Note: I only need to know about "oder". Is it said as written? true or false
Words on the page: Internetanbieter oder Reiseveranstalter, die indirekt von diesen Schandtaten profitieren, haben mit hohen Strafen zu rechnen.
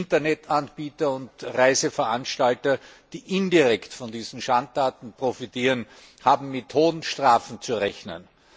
false